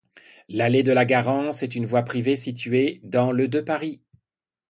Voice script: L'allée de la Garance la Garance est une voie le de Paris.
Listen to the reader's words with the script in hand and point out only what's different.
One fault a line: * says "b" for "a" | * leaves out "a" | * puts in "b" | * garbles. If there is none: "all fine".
* leaves out "la Garance"
* puts in "privée située dans"